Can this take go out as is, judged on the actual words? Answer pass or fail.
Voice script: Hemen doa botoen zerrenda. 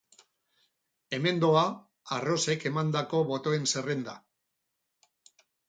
fail